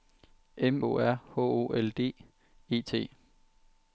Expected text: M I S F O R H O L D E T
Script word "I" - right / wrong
wrong